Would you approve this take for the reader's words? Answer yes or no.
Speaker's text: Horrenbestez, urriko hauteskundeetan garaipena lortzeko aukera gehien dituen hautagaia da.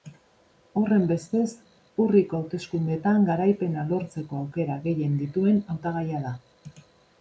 yes